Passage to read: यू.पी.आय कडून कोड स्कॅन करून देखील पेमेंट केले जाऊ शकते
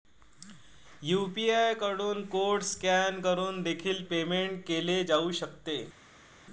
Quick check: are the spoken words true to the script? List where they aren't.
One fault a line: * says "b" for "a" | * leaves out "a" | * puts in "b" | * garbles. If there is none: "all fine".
all fine